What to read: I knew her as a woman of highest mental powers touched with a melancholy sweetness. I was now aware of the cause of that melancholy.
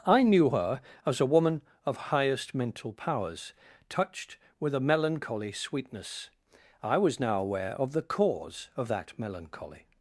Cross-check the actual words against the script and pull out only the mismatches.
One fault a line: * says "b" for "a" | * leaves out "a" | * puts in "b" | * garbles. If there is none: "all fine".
all fine